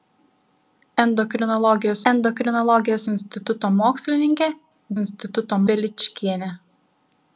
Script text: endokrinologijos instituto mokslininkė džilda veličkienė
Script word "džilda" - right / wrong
wrong